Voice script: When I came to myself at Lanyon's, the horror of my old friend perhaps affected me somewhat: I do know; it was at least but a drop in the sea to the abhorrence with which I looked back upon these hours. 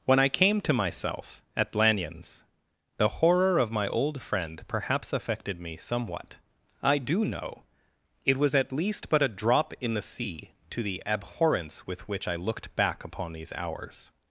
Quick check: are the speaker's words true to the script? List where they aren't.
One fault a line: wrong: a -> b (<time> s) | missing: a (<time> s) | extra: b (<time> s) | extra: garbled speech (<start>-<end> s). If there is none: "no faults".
no faults